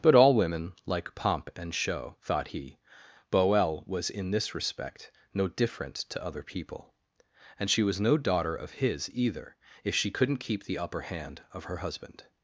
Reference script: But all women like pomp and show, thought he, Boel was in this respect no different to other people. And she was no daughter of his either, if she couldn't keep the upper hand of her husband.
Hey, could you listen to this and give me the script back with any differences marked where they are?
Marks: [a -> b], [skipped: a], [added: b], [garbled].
But all women like pomp and show, thought he, Boel was in this respect no different to other people. And she was no daughter of his either, if she couldn't keep the upper hand of her husband.